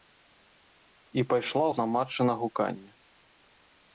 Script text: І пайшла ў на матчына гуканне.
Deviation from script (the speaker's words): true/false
false